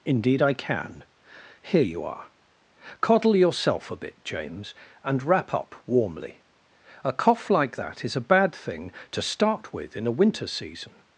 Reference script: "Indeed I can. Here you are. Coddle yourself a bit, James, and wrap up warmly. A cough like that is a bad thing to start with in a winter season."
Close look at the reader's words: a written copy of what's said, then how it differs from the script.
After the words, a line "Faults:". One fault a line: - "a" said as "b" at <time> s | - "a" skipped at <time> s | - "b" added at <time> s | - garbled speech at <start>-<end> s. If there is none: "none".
"Indeed I can. Here you are. Coddle yourself a bit, James, and wrap up warmly. A cough like that is a bad thing to start with in a winter season."
Faults:
none